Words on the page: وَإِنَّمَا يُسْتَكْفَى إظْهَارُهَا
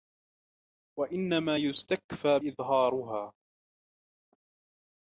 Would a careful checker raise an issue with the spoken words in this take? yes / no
no